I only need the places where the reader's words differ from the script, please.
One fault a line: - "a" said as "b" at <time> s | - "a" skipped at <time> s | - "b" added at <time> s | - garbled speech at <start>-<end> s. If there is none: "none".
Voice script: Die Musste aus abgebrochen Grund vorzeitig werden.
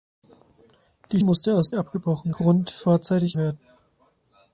none